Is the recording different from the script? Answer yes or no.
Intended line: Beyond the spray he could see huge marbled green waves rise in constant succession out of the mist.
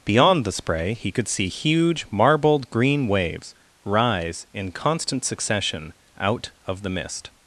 no